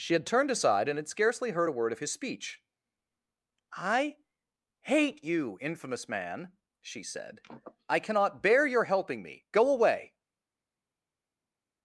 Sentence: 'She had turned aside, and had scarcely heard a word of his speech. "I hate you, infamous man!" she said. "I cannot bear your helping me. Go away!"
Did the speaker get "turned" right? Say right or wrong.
right